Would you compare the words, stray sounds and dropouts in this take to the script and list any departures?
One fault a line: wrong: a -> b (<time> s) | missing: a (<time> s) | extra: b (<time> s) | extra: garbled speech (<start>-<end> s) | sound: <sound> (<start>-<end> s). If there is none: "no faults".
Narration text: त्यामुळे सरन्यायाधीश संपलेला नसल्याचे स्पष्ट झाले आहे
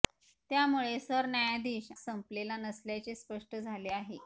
no faults